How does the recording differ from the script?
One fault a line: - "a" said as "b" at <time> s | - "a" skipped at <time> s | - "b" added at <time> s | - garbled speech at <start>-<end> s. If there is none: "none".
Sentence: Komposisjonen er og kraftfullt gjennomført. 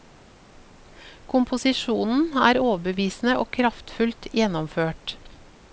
- "overbevisende" added at 2.6 s